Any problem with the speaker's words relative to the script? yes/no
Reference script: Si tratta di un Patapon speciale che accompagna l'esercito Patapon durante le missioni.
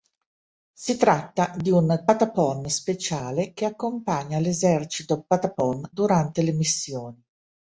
no